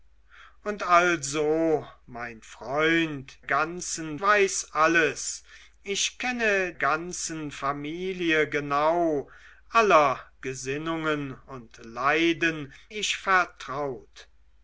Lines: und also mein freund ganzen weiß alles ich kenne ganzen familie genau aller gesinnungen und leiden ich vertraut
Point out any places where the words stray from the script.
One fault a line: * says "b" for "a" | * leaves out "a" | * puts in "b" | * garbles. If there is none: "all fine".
all fine